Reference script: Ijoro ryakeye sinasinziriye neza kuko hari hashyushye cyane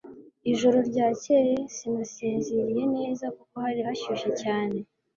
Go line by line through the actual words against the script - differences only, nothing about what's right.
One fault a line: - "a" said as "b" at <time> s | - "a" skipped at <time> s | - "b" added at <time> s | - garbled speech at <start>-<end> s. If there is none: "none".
none